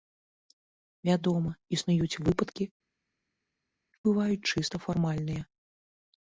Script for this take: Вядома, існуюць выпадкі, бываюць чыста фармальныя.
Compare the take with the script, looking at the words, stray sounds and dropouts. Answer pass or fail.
pass